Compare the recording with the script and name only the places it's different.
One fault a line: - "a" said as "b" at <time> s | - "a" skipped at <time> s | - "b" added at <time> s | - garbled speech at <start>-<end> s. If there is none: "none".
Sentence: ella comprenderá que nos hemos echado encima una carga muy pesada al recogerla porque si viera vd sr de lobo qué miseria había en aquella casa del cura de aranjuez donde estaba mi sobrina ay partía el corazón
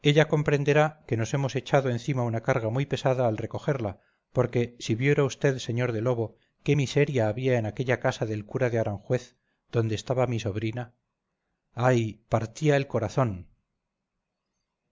none